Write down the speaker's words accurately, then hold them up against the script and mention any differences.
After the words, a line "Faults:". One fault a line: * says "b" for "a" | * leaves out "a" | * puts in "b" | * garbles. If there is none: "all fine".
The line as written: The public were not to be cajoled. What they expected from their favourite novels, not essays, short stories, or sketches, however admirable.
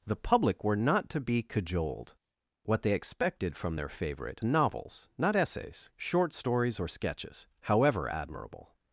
The public were not to be cajoled. What they expected from their favourite novels, not essays, short stories, or sketches, however admirable.
Faults:
all fine